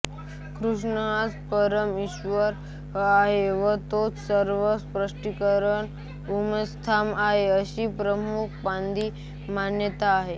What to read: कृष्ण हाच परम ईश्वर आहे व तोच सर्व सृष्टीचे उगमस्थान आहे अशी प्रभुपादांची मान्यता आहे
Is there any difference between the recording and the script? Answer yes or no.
no